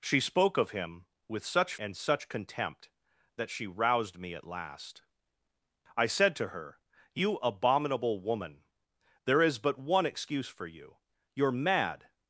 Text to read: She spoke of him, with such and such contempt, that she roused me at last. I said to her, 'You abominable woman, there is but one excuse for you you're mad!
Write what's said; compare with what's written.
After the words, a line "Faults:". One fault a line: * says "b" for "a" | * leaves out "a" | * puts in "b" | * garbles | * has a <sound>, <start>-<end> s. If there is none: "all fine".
She spoke of him, with such and such contempt, that she roused me at last. I said to her, 'You abominable woman, there is but one excuse for you you're mad!
Faults:
all fine